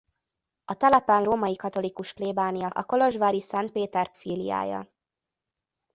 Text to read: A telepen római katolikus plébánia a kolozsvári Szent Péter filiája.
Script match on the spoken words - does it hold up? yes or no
yes